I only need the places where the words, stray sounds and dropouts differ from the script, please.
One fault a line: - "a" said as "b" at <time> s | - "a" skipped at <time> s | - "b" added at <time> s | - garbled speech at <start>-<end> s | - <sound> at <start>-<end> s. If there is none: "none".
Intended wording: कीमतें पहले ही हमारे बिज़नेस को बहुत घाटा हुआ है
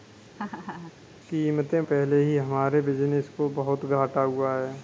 - laugh at 0.4-0.9 s